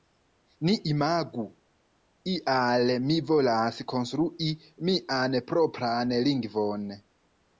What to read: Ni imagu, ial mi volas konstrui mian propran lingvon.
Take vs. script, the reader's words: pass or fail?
pass